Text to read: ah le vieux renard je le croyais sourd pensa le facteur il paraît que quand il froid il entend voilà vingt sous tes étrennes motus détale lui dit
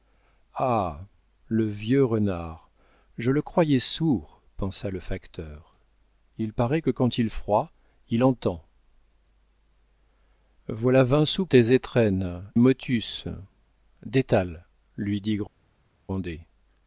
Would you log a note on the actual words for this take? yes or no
no